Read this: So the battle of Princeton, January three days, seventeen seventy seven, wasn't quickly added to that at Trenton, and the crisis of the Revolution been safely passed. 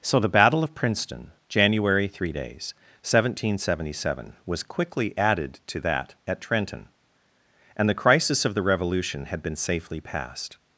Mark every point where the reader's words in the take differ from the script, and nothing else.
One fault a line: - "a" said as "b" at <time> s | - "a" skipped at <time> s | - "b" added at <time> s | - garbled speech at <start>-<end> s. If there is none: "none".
- "wasn't" said as "was" at 4.4 s
- "had" added at 9.2 s